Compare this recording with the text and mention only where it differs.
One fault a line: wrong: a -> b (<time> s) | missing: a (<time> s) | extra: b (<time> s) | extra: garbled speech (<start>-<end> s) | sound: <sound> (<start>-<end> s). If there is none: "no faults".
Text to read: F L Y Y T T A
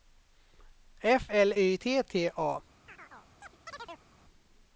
missing: Y (1.8 s)
sound: chirp (2.9-4.1 s)